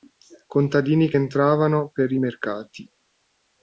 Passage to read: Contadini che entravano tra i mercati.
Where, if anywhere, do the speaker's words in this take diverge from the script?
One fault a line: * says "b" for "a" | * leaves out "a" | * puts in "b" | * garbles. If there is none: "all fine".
* says "per" for "tra"